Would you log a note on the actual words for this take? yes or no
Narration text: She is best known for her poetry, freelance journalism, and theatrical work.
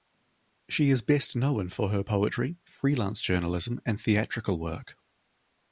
no